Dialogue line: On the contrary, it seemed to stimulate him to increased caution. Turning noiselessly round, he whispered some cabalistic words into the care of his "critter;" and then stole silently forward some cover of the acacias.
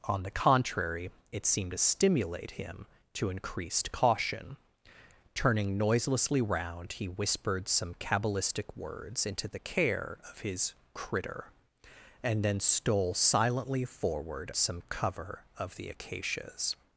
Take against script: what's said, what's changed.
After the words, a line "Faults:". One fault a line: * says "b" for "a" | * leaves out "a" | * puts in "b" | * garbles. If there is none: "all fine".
On the contrary, it seemed to stimulate him to increased caution. Turning noiselessly round, he whispered some cabalistic words into the care of his "critter;" and then stole silently forward some cover of the acacias.
Faults:
all fine